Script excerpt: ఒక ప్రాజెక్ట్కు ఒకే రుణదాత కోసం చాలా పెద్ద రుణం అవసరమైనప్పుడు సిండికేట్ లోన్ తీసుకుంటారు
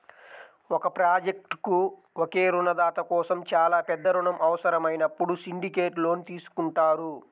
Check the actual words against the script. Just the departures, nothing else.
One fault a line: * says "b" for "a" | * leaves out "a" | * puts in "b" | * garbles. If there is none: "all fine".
all fine